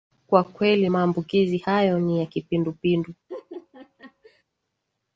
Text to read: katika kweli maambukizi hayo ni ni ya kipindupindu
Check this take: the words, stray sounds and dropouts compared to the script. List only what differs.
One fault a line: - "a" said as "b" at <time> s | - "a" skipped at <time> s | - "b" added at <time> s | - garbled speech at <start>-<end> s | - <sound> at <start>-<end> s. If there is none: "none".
- "katika" said as "kwa" at 0.3 s
- "ni" skipped at 2.2 s
- laugh at 3.3-4.4 s